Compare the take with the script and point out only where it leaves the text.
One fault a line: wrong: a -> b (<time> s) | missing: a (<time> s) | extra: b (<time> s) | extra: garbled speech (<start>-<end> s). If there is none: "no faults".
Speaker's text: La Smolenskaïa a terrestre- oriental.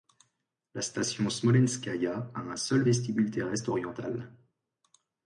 extra: station (0.8 s)
extra: un seul vestibule (2.4 s)